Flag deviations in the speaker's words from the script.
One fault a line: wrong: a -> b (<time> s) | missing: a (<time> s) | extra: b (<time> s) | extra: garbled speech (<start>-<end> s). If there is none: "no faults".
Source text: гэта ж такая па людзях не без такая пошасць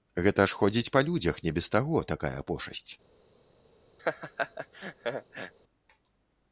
wrong: такая -> ходзіць (0.6 s)
extra: таго (1.7 s)